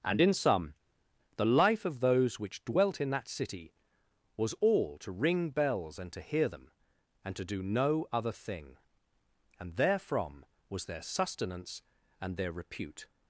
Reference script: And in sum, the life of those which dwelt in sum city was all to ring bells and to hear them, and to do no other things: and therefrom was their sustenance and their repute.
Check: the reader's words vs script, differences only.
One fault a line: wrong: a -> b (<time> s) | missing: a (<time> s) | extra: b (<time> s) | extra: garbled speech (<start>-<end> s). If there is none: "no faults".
wrong: sum -> that (3.1 s)
wrong: things -> thing (8.3 s)